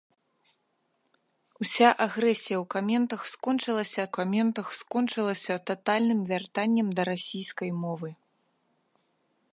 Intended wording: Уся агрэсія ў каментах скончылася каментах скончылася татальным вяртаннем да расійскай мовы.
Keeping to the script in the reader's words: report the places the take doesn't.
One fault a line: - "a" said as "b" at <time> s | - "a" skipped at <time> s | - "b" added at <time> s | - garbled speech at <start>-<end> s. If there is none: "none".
none